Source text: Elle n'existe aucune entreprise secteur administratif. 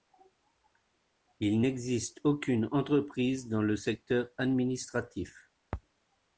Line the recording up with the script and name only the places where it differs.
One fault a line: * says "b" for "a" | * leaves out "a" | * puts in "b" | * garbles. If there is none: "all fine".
* says "Il" for "Elle"
* puts in "dans le"